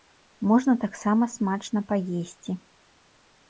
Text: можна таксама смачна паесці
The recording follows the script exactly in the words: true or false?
true